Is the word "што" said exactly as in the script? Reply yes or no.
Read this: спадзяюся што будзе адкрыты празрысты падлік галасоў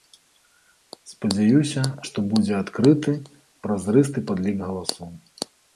yes